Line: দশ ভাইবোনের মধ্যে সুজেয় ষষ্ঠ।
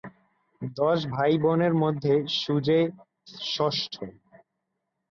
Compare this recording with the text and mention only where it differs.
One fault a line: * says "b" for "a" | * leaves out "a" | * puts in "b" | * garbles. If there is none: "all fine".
all fine